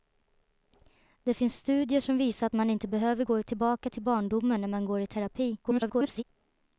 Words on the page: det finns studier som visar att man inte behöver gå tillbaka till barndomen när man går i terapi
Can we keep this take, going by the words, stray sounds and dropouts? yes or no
no